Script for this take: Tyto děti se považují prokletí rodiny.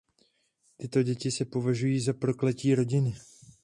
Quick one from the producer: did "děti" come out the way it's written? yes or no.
yes